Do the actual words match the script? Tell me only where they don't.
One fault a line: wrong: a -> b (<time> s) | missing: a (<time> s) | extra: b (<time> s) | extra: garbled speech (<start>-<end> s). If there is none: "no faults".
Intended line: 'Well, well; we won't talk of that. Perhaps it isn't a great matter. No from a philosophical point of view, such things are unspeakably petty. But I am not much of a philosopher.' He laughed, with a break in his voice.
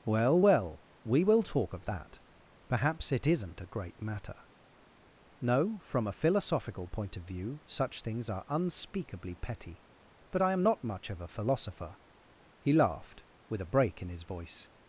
wrong: won't -> will (1.2 s)